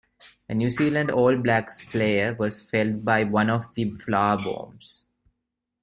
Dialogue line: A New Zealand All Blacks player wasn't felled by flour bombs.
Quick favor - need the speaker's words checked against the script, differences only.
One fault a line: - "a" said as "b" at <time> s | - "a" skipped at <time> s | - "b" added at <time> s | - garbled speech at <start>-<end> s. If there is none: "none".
- "wasn't" said as "was" at 2.4 s
- "one of the" added at 3.2 s